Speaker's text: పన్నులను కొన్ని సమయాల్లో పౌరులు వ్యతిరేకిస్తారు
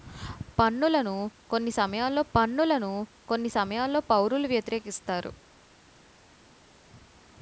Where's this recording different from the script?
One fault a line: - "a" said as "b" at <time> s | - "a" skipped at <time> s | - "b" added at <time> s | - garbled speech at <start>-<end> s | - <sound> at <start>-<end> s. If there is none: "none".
- "పన్నులను కొన్ని సమయాల్లో" added at 2.3 s